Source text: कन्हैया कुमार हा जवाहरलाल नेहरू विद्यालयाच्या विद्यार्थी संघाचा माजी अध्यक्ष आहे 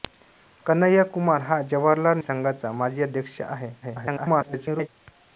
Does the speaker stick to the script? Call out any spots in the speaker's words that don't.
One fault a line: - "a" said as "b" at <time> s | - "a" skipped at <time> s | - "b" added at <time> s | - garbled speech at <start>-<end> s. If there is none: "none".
- "नेहरू विद्यालयाच्या विद्यार्थी" skipped at 2.2 s
- garbled speech at 3.8-4.9 s